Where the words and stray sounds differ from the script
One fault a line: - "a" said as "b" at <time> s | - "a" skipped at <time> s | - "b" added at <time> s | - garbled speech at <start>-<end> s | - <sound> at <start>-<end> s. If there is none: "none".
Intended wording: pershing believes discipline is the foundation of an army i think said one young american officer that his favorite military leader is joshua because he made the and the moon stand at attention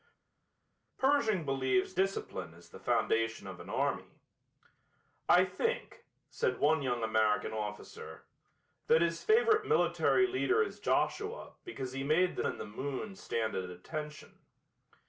none